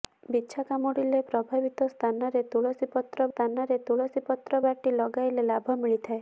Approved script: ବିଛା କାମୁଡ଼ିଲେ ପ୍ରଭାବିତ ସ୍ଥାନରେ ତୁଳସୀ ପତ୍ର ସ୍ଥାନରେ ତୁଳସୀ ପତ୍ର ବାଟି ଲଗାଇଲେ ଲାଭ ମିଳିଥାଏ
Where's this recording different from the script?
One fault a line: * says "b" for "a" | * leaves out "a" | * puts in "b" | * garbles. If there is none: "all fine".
all fine